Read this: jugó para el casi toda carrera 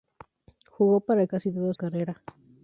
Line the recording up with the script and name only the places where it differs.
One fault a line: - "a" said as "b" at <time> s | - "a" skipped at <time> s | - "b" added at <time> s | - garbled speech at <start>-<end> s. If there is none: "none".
none